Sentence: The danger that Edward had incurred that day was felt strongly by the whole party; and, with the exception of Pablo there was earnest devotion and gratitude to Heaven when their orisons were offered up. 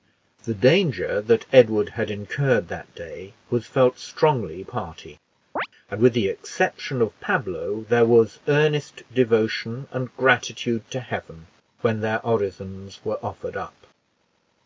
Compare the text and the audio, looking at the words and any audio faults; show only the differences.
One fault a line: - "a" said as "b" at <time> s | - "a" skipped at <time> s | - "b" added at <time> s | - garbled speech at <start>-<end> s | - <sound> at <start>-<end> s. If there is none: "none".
- "by the whole" skipped at 4.6 s
- chirp at 5.6-5.7 s